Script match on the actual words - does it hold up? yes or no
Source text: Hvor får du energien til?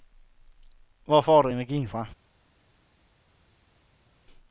no